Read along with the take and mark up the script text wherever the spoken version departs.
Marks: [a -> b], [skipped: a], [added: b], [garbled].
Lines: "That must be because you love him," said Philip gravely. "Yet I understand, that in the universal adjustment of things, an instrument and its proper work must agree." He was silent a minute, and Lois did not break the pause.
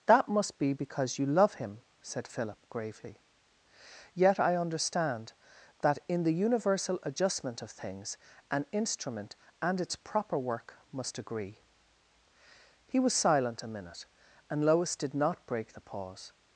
"That must be because you love him," said Philip gravely. "Yet I understand, that in the universal adjustment of things, an instrument and its proper work must agree." He was silent a minute, and Lois did not break the pause.